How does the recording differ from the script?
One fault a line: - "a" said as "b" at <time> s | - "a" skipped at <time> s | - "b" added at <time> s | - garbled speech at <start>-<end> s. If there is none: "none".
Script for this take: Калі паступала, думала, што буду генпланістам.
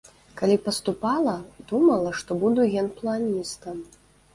none